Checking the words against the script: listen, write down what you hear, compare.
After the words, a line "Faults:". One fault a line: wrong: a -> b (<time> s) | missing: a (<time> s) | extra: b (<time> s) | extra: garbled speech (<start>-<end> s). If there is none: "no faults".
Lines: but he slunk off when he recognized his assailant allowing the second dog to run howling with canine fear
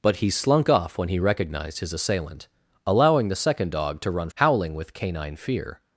but he slunk off when he recognized his assailant allowing the second dog to run howling with canine fear
Faults:
no faults